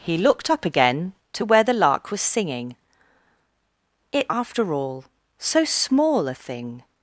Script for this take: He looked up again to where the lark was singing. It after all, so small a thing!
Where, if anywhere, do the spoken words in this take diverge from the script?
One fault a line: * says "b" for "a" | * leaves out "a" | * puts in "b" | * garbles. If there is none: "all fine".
all fine